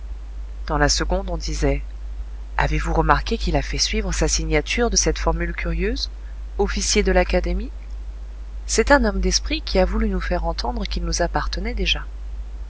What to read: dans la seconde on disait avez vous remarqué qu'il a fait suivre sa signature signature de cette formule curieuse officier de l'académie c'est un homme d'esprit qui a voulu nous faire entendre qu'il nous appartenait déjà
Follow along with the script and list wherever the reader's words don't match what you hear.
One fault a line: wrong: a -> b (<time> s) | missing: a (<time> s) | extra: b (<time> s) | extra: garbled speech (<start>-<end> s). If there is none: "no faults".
missing: signature (4.9 s)